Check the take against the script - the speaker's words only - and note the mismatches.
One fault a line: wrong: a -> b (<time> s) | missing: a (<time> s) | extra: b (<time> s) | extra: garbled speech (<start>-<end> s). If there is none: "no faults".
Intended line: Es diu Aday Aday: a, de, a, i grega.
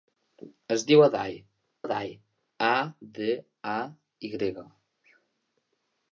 no faults